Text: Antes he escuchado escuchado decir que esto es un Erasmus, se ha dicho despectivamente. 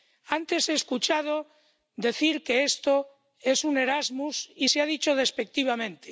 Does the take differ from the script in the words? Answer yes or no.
yes